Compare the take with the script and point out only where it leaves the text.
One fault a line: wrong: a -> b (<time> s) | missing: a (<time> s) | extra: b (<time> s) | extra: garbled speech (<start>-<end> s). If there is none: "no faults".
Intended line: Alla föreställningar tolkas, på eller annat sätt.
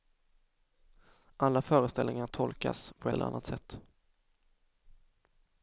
no faults